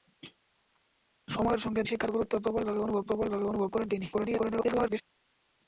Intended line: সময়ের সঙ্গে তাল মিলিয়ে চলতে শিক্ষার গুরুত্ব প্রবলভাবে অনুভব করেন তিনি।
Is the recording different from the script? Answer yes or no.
yes